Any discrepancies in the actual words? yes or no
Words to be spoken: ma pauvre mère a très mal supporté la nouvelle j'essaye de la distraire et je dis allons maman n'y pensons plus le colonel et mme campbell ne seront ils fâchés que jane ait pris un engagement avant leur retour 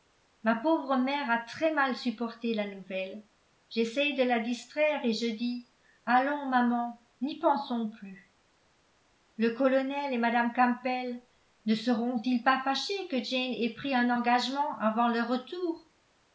yes